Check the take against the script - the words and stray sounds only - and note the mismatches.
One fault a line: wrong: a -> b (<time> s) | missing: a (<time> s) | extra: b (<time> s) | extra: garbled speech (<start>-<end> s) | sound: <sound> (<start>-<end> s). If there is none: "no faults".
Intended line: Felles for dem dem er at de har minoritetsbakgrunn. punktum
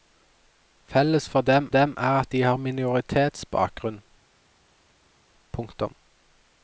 no faults